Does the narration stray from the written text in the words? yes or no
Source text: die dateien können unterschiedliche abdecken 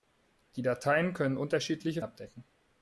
no